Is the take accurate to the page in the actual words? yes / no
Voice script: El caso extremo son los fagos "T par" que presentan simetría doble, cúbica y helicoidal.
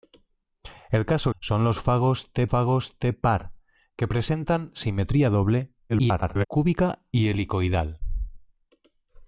no